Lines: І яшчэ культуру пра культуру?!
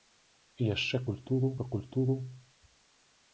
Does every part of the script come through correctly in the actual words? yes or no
yes